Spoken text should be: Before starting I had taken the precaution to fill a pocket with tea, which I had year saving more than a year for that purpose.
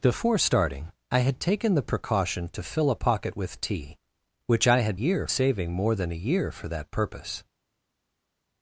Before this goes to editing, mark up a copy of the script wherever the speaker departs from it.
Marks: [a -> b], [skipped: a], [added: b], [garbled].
Before starting I had taken the precaution to fill a pocket with tea, which I had year saving more than a year for that purpose.